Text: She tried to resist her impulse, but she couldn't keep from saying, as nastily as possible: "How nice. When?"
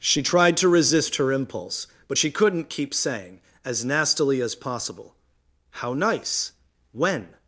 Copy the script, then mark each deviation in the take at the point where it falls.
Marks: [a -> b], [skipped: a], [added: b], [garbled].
She tried to resist her impulse, but she couldn't keep [skipped: from] saying, as nastily as possible: "How nice. When?"